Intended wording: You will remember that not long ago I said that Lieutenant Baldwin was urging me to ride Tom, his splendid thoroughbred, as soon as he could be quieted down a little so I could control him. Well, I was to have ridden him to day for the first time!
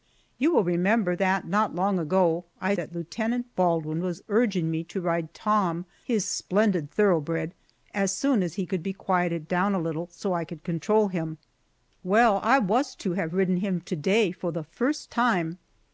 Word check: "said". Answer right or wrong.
wrong